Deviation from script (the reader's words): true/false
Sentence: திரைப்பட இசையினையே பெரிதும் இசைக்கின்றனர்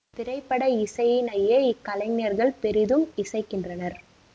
true